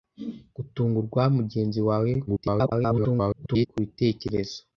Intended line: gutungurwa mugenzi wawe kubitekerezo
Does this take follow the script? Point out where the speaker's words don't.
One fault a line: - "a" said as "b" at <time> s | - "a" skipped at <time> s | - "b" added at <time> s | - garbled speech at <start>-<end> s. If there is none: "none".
- garbled speech at 2.3-3.7 s